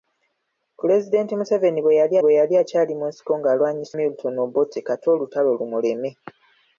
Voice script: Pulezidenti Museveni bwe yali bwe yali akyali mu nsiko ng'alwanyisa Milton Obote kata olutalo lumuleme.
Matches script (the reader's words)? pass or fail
pass